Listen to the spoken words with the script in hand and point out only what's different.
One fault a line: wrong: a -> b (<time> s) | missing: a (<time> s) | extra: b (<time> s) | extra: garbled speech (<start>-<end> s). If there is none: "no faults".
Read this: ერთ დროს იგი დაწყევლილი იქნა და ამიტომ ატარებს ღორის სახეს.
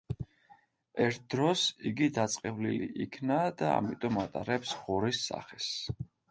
no faults